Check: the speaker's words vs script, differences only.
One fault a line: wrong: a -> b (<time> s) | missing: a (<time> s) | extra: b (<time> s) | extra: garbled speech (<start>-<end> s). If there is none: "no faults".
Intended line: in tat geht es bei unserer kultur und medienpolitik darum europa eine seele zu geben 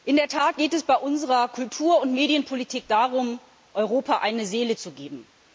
extra: der (0.1 s)